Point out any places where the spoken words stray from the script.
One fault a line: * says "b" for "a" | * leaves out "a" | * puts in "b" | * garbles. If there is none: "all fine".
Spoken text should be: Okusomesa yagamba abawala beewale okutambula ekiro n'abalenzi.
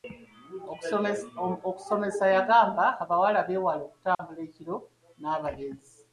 all fine